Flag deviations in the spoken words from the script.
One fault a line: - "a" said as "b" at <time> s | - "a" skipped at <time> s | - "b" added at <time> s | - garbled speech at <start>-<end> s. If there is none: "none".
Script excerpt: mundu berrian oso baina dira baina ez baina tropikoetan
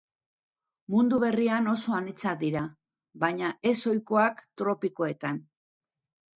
- "baina" said as "anitzak" at 2.0 s
- "baina" said as "ohikoak" at 3.9 s